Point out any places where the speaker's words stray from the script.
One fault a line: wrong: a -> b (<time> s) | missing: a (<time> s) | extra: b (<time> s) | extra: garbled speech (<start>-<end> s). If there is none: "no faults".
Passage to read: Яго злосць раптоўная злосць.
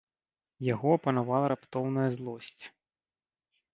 wrong: злосць -> апанавала (1.0 s)